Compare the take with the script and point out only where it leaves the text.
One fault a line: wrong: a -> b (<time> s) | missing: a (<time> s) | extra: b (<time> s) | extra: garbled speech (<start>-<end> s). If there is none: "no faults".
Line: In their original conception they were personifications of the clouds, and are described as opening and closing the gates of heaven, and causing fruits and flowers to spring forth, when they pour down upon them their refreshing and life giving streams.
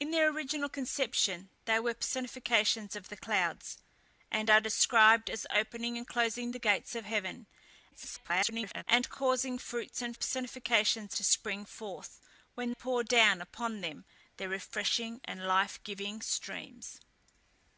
extra: garbled speech (7.9-8.8 s)
wrong: flowers -> personifications (10.1 s)
missing: they (12.7 s)